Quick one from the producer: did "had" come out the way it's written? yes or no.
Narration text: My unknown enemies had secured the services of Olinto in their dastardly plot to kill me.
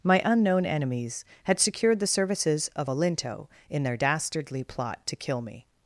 yes